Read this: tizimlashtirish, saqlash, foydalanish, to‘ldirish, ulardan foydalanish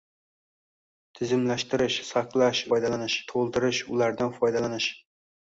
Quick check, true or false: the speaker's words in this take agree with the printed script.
true